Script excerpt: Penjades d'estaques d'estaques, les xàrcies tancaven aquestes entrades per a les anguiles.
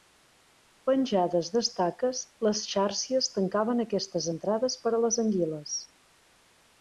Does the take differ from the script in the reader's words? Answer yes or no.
yes